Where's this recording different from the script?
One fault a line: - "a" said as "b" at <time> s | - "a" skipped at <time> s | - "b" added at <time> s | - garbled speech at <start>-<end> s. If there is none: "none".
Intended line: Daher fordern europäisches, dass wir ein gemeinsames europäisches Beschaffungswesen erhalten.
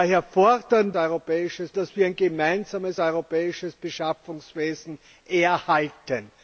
none